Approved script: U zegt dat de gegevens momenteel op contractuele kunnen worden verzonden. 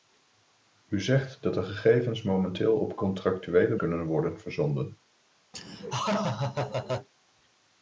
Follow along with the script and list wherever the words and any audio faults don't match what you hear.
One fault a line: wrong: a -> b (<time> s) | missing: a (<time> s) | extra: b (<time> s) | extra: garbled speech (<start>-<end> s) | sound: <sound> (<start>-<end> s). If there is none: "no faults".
sound: laugh (5.5-7.1 s)